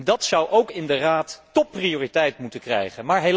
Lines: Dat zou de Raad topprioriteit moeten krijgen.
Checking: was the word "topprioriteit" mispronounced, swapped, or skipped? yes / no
no